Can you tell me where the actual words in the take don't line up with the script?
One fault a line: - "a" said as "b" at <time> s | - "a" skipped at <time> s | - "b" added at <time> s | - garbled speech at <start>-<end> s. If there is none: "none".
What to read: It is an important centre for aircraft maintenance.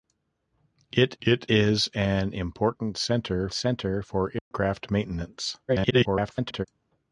- "it" added at 1.2 s
- "centre" added at 3.5 s
- garbled speech at 5.7-6.7 s